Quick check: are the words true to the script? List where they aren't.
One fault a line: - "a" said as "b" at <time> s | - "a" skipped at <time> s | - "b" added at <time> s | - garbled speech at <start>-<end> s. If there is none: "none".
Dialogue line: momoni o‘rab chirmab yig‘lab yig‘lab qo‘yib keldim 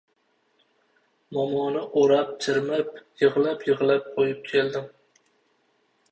none